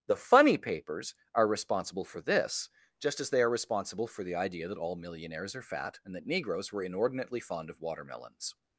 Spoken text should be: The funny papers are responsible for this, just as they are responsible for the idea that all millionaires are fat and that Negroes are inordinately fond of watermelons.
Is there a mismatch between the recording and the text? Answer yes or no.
yes